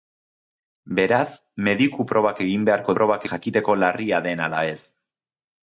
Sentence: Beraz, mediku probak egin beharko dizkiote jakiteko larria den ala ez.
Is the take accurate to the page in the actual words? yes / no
no